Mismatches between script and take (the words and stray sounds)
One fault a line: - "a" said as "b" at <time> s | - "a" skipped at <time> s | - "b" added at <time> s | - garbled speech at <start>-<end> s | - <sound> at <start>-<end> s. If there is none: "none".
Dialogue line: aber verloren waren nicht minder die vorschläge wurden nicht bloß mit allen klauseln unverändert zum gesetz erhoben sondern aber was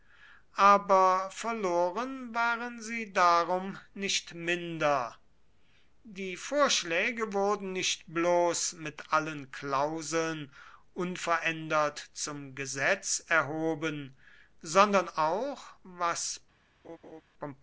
- "sie darum" added at 2.8 s
- "aber" said as "auch" at 15.1 s
- laugh at 16.8-17.2 s